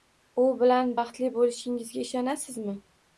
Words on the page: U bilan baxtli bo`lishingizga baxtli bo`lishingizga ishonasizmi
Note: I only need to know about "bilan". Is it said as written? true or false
true